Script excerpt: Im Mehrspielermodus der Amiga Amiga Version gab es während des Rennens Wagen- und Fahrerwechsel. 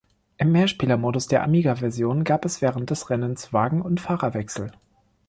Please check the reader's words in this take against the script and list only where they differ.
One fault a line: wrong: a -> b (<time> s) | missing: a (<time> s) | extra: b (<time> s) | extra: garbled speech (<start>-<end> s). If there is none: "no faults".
missing: Amiga (1.8 s)